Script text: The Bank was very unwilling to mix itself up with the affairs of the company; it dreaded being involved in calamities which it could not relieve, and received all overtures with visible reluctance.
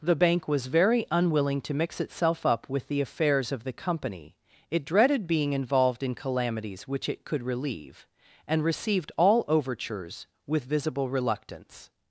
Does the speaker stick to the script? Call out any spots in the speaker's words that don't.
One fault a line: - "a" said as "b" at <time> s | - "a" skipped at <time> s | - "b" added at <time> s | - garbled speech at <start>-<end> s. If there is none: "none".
- "not" skipped at 7.4 s